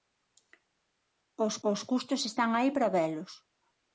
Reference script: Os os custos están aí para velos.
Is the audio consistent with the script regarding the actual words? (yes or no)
yes